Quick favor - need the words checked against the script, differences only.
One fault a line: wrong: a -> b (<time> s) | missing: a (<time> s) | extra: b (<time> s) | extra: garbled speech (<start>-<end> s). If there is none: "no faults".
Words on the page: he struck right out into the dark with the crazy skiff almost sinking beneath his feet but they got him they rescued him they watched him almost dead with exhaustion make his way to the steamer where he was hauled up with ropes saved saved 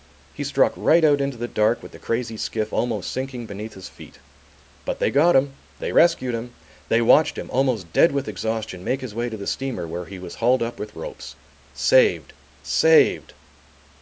no faults